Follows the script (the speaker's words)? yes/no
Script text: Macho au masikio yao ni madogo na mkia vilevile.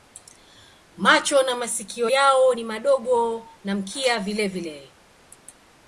no